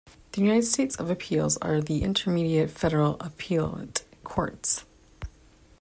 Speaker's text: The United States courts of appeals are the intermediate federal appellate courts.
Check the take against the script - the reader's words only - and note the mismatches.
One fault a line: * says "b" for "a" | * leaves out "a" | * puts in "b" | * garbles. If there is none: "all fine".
* leaves out "courts"